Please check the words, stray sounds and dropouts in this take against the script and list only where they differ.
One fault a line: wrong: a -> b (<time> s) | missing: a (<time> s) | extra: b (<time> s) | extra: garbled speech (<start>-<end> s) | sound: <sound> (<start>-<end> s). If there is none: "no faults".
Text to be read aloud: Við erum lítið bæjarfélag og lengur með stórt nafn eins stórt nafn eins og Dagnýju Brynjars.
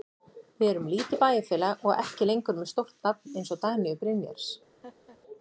extra: ekki (2.1 s)
missing: stórt nafn eins (3.6 s)
sound: laugh (4.8-5.2 s)